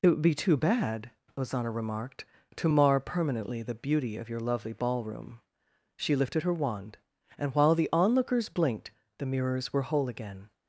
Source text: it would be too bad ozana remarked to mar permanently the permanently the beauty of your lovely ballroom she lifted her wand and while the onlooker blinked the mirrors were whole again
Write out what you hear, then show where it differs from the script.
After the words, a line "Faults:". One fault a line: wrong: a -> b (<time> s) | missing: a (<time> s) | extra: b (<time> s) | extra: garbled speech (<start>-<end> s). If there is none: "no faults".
it would be too bad ozana remarked to mar permanently the beauty of your lovely ballroom she lifted her wand and while the onlookers blinked the mirrors were whole again
Faults:
missing: permanently the (3.7 s)
wrong: onlooker -> onlookers (7.9 s)